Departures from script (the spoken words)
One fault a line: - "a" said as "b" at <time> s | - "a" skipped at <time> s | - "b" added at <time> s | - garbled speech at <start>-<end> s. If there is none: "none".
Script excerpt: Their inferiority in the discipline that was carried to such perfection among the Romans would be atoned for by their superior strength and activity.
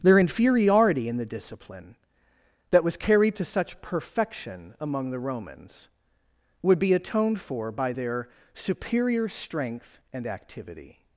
none